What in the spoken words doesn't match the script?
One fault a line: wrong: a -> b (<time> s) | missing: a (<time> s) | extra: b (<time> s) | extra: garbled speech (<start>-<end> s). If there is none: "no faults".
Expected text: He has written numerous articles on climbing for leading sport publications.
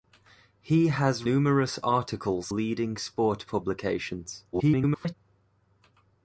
missing: written (1.2 s)
missing: on climbing for (2.5 s)
extra: garbled speech (4.5-5.1 s)